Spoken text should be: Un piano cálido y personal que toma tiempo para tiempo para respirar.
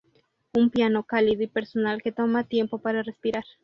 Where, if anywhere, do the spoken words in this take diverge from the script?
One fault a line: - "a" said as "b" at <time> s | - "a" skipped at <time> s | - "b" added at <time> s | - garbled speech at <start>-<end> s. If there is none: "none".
- "tiempo para" skipped at 3.0 s